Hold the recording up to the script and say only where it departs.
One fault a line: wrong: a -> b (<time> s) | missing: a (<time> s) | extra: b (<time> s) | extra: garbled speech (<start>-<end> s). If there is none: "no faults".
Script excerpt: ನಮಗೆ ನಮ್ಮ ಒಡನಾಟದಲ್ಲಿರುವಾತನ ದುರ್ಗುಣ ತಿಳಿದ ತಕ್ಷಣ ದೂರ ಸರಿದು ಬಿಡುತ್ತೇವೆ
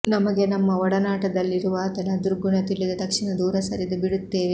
no faults